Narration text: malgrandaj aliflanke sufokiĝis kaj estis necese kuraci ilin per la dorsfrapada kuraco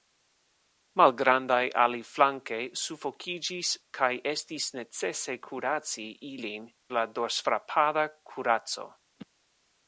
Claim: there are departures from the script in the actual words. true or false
true